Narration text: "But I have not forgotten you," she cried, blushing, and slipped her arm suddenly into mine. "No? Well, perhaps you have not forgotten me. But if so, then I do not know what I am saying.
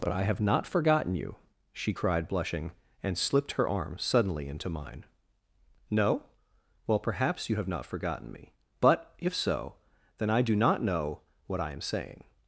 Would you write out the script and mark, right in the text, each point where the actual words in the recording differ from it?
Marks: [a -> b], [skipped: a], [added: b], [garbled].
"But I have not forgotten you," she cried, blushing, and slipped her arm suddenly into mine. "No? Well, perhaps you have not forgotten me. But if so, then I do not know what I am saying.